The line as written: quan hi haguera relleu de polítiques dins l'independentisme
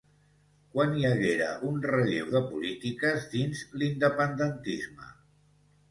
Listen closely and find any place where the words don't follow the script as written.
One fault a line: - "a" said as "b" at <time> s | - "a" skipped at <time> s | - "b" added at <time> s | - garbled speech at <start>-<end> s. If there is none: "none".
- "un" added at 1.7 s